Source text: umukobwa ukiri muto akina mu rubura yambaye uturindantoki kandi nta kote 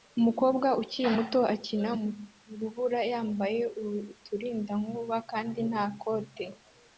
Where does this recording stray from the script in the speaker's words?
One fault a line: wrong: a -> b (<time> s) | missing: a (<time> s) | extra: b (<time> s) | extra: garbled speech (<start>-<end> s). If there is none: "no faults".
no faults